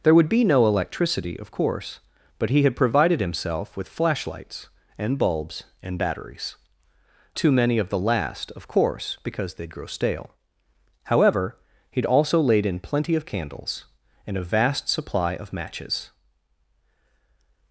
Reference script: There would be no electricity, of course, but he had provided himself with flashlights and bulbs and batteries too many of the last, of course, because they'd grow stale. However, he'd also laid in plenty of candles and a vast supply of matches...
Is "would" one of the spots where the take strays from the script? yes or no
no